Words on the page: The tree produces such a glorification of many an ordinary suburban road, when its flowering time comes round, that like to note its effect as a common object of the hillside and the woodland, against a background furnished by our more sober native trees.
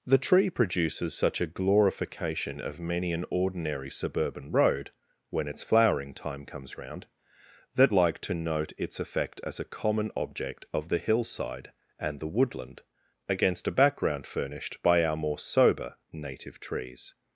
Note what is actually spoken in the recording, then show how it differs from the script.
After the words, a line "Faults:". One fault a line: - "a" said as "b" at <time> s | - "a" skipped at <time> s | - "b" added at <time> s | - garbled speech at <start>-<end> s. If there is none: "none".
The tree produces such a glorification of many an ordinary suburban road, when its flowering time comes round, that like to note its effect as a common object of the hillside and the woodland, against a background furnished by our more sober native trees.
Faults:
none